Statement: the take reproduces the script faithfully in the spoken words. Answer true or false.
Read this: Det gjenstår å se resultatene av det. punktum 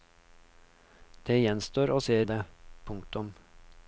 false